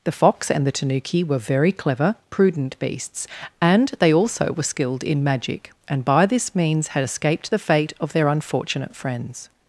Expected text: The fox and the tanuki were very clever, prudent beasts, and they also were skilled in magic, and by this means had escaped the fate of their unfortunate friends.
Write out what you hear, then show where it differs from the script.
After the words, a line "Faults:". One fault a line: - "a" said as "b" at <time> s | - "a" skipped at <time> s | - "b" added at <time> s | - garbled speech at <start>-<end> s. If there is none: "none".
The fox and the tanuki were very clever, prudent beasts, and they also were skilled in magic, and by this means had escaped the fate of their unfortunate friends.
Faults:
none